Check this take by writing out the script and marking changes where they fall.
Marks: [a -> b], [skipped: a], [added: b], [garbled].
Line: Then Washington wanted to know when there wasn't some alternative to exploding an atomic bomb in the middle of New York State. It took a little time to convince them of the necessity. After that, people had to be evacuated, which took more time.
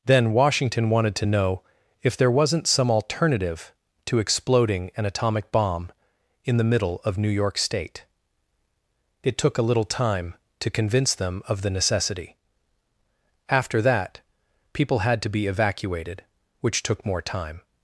Then Washington wanted to know [when -> if] there wasn't some alternative to exploding an atomic bomb in the middle of New York State. It took a little time to convince them of the necessity. After that, people had to be evacuated, which took more time.